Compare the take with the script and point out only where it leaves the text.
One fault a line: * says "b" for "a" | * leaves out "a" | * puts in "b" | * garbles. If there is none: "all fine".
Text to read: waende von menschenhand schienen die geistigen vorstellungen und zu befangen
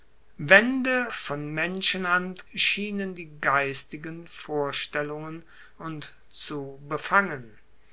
all fine